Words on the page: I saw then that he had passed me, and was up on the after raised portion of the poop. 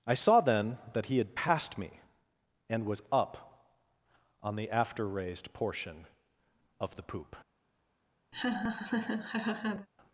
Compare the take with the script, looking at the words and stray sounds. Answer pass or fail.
fail